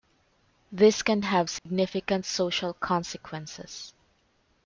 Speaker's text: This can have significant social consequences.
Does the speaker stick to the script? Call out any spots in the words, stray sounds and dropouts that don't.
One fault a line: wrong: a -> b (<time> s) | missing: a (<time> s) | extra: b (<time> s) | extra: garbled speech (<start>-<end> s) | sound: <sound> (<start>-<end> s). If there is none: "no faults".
sound: dropout (1.6-1.7 s)